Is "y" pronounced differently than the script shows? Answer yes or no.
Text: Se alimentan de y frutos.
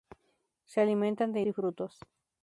no